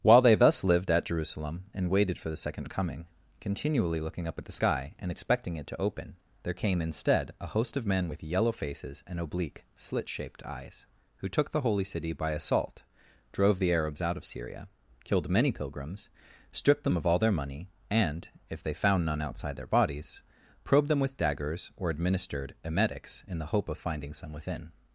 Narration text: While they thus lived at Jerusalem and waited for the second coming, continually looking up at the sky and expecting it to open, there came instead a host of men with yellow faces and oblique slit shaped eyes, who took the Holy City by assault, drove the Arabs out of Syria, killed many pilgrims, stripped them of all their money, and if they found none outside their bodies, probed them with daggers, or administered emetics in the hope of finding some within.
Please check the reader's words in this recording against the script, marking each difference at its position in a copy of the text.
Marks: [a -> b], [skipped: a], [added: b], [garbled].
While they thus lived at Jerusalem and waited for the second coming, continually looking up at the sky and expecting it to open, there came instead a host of men with yellow faces and oblique slit shaped eyes, who took the Holy City by assault, drove the Arabs out of Syria, killed many pilgrims, stripped them of all their money, and if they found none outside their bodies, probed them with daggers, or administered emetics in the hope of finding some within.